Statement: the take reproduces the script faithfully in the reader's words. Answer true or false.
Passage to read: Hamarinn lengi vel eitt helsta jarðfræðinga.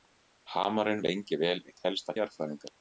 true